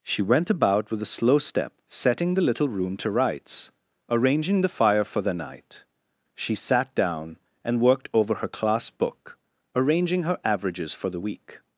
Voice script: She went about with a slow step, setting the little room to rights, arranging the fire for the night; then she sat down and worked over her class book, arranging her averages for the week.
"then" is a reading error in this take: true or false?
true